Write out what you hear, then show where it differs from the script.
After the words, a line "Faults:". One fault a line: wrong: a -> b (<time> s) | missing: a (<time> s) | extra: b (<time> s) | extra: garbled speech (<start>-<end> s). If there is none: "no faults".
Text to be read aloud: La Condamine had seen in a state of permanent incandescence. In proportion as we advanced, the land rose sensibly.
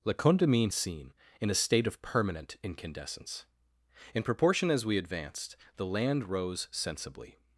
La Condamine seen in a state of permanent incandescence. In proportion as we advanced, the land rose sensibly.
Faults:
missing: had (0.7 s)